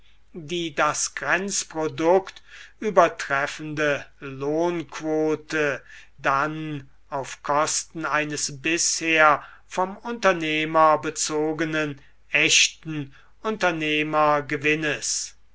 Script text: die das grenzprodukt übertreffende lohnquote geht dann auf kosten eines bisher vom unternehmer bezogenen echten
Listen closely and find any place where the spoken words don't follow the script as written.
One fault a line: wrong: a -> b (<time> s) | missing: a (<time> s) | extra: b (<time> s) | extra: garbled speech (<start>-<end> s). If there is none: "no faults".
missing: geht (5.8 s)